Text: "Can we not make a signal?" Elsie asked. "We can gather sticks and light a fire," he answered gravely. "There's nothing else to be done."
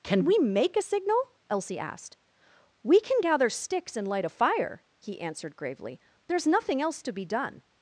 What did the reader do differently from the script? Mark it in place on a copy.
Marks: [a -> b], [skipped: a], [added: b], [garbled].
"Can we [skipped: not] make a signal?" Elsie asked. "We can gather sticks and light a fire," he answered gravely. "There's nothing else to be done."